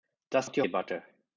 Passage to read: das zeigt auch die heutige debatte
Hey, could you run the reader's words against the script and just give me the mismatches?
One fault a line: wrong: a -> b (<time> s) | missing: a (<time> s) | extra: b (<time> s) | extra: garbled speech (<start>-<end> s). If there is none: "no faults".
missing: zeigt (0.5 s)
missing: heutige (0.6 s)